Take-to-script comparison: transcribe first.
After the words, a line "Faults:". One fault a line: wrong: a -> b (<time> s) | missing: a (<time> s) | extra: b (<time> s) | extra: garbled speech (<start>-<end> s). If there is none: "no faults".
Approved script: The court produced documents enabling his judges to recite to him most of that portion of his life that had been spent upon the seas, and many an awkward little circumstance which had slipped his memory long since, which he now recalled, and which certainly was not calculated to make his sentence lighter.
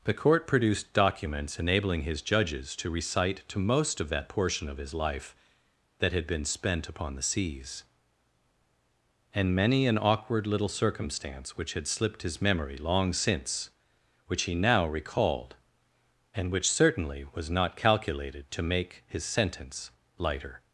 The court produced documents enabling his judges to recite to most of that portion of his life that had been spent upon the seas, and many an awkward little circumstance which had slipped his memory long since, which he now recalled, and which certainly was not calculated to make his sentence lighter.
Faults:
missing: him (3.6 s)